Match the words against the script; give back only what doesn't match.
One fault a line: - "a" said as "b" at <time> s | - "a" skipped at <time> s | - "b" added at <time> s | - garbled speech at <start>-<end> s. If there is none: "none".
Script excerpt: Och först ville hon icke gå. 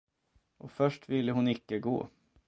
none